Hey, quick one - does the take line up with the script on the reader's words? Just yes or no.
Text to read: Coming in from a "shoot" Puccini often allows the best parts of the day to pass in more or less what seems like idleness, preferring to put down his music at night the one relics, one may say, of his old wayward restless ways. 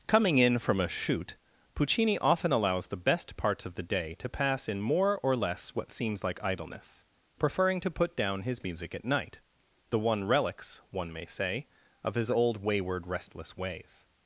yes